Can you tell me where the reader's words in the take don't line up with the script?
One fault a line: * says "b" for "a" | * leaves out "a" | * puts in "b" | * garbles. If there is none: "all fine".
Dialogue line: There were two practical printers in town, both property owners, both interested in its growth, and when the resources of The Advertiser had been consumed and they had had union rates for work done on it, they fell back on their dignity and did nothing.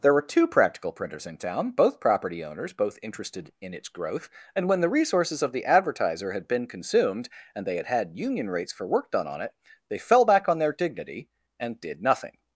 all fine